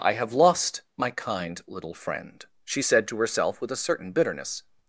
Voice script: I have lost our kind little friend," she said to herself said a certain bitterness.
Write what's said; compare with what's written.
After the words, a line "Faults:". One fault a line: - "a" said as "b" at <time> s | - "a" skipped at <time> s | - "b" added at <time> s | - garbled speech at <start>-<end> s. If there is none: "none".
I have lost my kind little friend," she said to herself with a certain bitterness.
Faults:
- "our" said as "my" at 1.0 s
- "said" said as "with" at 3.6 s